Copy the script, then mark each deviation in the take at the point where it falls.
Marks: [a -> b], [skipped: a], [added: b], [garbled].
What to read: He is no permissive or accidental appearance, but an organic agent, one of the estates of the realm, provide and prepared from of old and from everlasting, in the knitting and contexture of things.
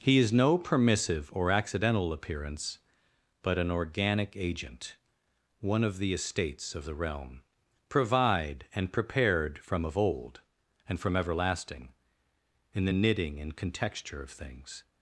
He is no permissive or accidental appearance, but an organic agent, one of the estates of the realm, provide and prepared from of old and from everlasting, in the knitting and contexture of things.